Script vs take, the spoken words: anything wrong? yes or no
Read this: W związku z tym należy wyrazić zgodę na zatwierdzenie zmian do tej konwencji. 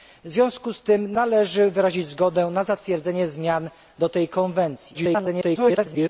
yes